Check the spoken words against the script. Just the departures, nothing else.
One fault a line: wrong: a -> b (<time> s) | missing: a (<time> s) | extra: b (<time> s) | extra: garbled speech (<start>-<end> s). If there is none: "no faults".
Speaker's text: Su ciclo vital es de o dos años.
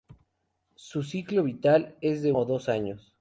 no faults